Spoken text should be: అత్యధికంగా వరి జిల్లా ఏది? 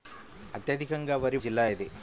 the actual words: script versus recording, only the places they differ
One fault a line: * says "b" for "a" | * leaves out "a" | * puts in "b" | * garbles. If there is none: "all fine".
all fine